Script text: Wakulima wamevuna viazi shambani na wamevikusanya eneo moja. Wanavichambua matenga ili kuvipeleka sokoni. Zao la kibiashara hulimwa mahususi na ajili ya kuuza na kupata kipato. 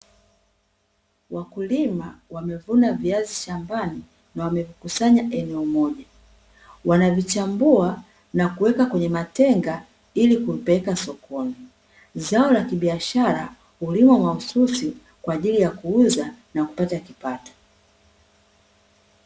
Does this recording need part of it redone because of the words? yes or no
yes